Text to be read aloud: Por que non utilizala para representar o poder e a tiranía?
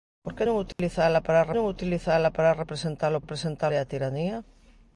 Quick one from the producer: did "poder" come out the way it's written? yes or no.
no